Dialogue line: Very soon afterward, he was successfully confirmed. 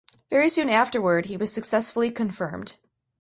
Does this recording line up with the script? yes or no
yes